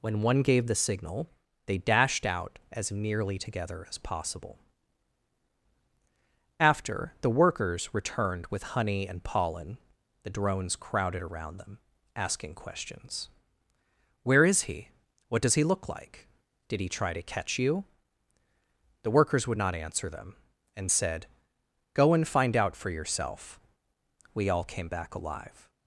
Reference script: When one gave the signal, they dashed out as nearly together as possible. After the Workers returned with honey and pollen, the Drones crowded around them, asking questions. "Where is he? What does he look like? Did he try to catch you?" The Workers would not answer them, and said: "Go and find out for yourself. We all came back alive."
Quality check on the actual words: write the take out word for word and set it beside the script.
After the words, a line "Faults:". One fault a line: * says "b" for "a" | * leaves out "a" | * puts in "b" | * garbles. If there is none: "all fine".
When one gave the signal, they dashed out as nearly together as possible. After the Workers returned with honey and pollen, the Drones crowded around them, asking questions. "Where is he? What does he look like? Did he try to catch you?" The Workers would not answer them, and said: "Go and find out for yourself. We all came back alive."
Faults:
all fine